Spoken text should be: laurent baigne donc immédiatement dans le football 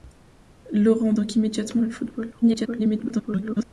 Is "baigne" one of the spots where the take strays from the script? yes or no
yes